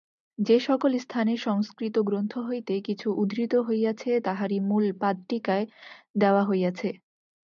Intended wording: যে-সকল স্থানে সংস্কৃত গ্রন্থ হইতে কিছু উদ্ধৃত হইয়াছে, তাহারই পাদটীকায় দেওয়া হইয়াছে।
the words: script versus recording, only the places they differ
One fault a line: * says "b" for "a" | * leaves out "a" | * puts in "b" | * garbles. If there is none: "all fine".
* puts in "মূল"